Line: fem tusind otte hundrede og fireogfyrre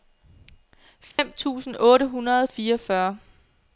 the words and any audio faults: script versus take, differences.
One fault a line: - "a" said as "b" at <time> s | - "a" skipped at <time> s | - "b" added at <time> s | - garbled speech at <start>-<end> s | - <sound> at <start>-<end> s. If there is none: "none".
- dropout at 1.1-1.2 s